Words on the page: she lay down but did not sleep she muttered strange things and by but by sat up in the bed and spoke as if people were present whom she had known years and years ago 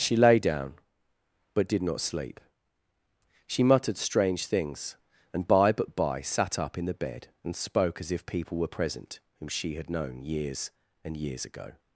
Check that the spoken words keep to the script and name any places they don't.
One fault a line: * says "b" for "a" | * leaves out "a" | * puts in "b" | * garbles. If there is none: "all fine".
all fine